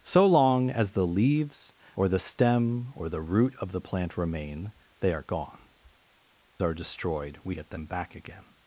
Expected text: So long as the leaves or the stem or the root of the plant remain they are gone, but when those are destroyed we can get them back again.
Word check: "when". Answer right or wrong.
wrong